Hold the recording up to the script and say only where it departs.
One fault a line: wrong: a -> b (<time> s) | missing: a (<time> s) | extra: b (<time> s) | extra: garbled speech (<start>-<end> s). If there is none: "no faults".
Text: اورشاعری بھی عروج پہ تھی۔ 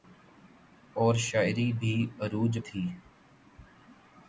missing: پہ (2.5 s)